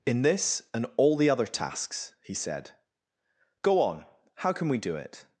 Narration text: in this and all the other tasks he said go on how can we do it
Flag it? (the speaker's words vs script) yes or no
no